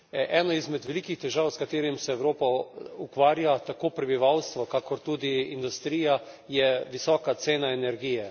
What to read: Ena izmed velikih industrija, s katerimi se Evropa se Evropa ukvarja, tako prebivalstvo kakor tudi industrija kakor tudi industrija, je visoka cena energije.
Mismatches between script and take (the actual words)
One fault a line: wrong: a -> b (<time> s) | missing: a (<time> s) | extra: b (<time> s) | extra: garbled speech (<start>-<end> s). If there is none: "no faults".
wrong: industrija -> težav (1.2 s)
missing: se Evropa (2.5 s)
missing: kakor tudi industrija (6.2 s)